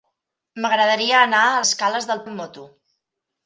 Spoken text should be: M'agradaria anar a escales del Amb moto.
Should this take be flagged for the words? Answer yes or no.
no